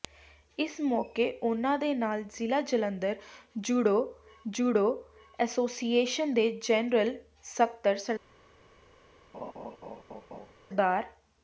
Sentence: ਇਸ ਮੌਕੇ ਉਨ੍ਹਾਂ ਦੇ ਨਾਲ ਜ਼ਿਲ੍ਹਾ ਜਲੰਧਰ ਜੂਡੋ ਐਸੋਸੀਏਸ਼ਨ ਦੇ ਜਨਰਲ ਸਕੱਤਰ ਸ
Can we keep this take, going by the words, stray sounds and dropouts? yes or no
no